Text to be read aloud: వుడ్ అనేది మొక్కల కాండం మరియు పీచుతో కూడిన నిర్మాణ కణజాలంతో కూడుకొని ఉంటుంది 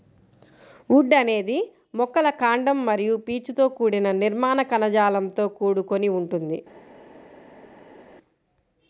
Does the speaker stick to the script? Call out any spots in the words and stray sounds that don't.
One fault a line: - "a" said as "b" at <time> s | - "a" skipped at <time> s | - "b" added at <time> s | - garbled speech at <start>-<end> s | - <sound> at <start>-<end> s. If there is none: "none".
none